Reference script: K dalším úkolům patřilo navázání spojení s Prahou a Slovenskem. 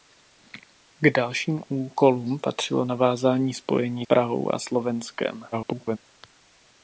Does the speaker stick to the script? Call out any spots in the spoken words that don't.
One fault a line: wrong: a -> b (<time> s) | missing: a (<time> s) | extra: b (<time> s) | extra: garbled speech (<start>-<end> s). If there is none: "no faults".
missing: s (4.0 s)
extra: garbled speech (5.5-6.0 s)